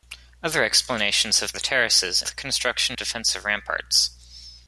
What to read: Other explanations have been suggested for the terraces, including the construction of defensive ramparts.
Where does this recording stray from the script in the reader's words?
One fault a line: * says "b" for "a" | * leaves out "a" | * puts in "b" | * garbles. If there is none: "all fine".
* leaves out "been suggested for"
* leaves out "including"
* leaves out "of"